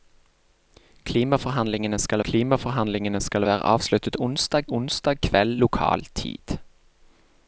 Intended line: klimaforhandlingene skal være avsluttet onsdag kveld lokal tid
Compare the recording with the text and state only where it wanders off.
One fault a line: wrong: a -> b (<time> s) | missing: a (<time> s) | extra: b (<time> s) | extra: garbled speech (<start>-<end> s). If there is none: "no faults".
extra: klimaforhandlingene skal (2.3 s)
extra: onsdag (4.7 s)